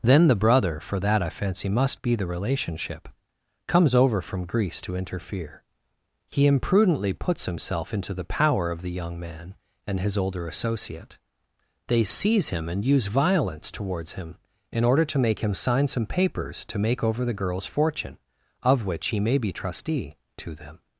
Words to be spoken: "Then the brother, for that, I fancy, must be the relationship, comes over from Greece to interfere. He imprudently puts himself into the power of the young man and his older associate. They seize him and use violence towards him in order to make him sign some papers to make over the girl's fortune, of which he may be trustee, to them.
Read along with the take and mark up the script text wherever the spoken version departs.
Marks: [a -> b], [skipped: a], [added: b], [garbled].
"Then the brother, for that, I fancy, must be the relationship, comes over from Greece to interfere. He imprudently puts himself into the power of the young man and his older associate. They seize him and use violence towards him in order to make him sign some papers to make over the girl's fortune, of which he may be trustee, to them.